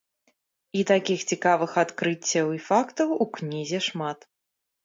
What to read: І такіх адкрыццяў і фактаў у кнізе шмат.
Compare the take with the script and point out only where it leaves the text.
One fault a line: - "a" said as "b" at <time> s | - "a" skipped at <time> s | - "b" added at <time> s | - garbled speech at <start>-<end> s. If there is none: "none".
- "цікавых" added at 1.3 s